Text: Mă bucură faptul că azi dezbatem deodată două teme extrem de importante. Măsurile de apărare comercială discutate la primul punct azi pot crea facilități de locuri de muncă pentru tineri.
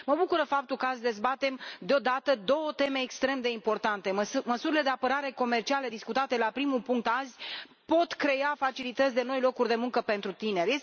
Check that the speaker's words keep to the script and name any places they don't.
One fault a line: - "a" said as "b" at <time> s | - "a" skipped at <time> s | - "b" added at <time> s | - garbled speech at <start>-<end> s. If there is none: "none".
- "noi" added at 9.2 s